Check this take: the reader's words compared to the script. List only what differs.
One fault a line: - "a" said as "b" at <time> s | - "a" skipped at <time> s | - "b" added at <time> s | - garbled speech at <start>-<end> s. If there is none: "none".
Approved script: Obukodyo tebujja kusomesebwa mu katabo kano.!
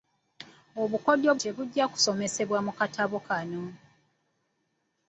none